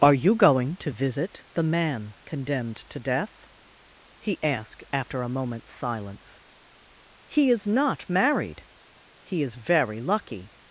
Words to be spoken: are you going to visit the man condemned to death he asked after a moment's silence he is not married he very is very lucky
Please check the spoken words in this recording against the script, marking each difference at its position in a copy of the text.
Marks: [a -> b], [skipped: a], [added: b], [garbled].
are you going to visit the man condemned to death he asked after a moment's silence he is not married he [skipped: very] is very lucky